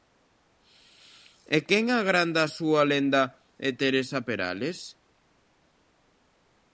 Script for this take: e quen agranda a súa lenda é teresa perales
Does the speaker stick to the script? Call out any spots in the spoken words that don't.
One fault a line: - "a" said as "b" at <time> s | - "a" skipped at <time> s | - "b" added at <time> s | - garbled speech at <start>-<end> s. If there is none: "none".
none